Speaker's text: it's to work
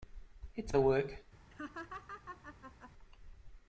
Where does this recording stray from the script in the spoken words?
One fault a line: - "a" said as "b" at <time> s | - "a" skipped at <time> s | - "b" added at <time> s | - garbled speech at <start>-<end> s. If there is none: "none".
none